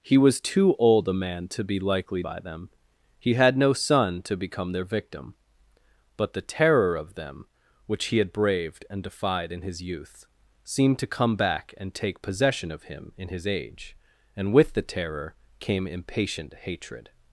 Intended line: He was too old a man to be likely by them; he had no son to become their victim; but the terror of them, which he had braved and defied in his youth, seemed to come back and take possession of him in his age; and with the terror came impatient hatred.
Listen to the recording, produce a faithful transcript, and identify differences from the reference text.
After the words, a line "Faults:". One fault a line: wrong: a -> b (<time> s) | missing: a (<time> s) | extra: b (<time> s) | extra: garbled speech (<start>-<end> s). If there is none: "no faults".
He was too old a man to be likely by them; he had no son to become their victim; but the terror of them, which he had braved and defied in his youth, seemed to come back and take possession of him in his age; and with the terror came impatient hatred.
Faults:
no faults